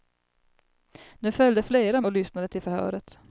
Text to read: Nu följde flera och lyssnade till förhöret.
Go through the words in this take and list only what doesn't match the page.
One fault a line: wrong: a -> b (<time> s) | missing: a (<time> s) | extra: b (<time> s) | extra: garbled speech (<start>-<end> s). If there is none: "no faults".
no faults